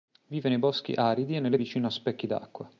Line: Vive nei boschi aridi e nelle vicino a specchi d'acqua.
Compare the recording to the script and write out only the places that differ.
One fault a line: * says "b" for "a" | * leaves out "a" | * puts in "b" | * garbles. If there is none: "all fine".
all fine